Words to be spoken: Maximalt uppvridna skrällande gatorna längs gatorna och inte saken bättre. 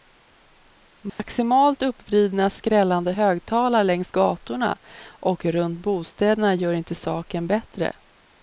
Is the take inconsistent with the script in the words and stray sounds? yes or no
yes